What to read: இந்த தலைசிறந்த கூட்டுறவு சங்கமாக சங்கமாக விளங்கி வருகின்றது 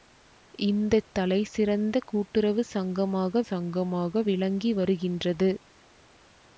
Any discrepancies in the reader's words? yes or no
no